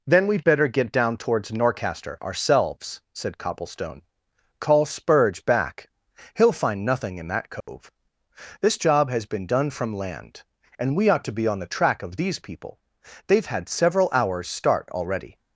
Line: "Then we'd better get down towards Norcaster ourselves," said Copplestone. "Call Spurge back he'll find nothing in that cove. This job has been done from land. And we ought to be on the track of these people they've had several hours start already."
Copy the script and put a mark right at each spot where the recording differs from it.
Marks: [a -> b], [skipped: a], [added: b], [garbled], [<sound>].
"Then we'd better get down towards Norcaster ourselves," said Copplestone. "Call Spurge back he'll find nothing in that cove. [dropout] This job has been done from land. And we ought to be on the track of these people they've had several hours start already."